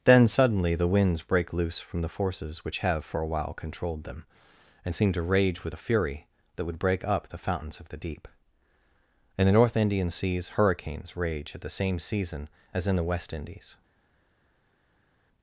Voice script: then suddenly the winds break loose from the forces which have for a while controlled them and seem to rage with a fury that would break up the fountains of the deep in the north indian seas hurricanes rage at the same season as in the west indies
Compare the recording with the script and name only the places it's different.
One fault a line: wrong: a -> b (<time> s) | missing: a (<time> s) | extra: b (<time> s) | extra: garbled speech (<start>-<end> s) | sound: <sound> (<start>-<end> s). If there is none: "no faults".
no faults